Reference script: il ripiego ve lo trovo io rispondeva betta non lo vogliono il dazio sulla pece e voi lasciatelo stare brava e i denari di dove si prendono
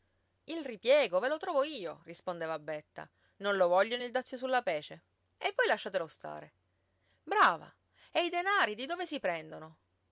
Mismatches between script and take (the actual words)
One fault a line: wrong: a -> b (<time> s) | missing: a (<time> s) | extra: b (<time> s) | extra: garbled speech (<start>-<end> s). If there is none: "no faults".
no faults